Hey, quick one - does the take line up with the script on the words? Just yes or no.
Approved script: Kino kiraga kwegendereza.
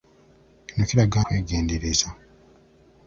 yes